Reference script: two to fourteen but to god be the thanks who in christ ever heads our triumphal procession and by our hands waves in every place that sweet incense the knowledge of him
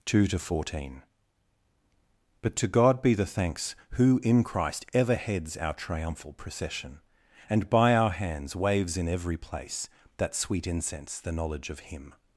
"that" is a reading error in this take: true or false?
false